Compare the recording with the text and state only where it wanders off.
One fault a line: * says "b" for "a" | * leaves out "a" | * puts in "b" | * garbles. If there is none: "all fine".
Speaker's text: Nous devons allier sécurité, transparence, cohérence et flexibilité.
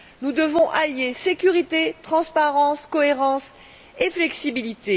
all fine